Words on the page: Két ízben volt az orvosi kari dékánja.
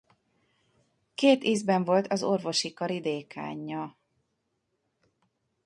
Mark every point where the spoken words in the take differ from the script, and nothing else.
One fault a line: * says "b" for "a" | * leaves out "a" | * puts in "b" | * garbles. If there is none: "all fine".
all fine